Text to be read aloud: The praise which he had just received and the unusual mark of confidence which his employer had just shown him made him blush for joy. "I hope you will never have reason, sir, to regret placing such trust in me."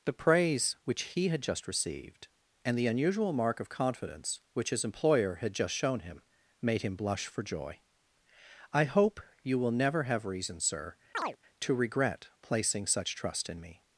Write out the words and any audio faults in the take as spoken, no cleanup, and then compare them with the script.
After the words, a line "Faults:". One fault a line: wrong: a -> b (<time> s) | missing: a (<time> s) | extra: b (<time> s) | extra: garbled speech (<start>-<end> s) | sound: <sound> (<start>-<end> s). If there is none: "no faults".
The praise which he had just received and the unusual mark of confidence which his employer had just shown him made him blush for joy. "I hope you will never have reason, sir, to regret placing such trust in me."
Faults:
sound: chirp (11.1-11.4 s)